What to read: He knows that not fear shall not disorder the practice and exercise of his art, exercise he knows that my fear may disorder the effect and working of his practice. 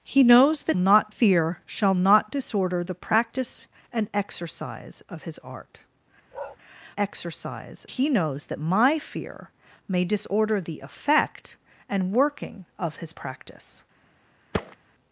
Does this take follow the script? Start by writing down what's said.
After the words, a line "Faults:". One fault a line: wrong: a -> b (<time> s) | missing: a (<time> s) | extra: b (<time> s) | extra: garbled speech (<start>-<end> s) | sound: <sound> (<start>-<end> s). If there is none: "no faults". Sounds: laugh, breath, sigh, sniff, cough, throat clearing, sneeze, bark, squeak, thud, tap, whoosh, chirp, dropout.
He knows that not fear shall not disorder the practice and exercise of his art, exercise he knows that my fear may disorder the effect and working of his practice.
Faults:
sound: bark (6.3-6.6 s)
sound: thud (14.5-14.8 s)